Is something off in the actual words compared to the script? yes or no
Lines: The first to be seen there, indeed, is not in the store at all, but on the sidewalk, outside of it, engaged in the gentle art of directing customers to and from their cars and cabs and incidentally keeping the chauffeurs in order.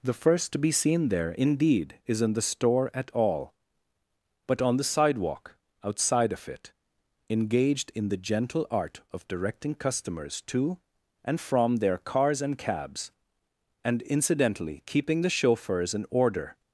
yes